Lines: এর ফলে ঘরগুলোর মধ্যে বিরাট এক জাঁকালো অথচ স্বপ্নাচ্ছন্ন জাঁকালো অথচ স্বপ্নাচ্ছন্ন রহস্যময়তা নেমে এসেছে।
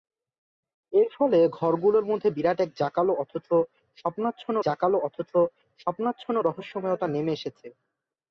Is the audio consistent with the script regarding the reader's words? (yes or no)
yes